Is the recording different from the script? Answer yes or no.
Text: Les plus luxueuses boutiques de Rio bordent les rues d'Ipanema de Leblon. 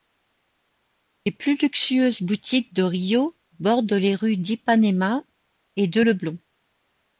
yes